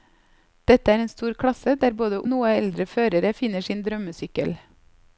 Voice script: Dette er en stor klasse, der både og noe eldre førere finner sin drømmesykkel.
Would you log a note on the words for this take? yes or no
no